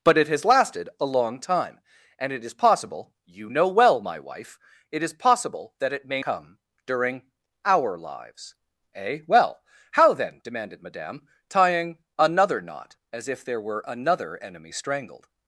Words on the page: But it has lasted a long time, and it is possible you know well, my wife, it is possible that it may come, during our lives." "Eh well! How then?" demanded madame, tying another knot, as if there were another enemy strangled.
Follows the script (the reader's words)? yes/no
yes